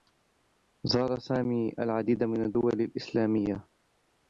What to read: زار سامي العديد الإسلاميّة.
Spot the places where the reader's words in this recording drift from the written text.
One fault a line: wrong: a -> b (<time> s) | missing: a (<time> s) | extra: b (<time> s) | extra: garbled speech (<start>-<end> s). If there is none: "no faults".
extra: من الدّول (2.2 s)